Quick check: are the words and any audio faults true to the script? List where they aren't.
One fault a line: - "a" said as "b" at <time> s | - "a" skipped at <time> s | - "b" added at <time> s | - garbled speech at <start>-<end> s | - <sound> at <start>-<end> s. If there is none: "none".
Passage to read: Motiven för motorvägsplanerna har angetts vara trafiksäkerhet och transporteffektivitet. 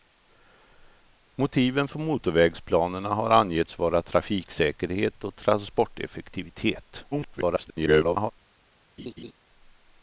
- garbled speech at 7.1-8.3 s
- laugh at 9.0-9.3 s